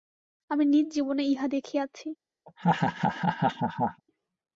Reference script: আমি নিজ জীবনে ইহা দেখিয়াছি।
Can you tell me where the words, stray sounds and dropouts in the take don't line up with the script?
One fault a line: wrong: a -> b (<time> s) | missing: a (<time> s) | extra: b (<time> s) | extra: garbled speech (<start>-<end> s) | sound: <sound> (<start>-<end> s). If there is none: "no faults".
sound: laugh (2.5-4.0 s)